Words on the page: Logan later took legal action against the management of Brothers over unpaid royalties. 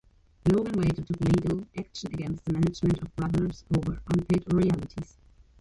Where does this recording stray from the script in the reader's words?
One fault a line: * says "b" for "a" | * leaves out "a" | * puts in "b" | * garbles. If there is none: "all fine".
all fine